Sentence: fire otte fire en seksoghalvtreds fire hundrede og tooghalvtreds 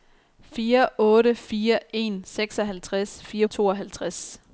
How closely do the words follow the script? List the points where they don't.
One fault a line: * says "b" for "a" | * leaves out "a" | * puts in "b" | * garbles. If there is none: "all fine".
* leaves out "hundrede"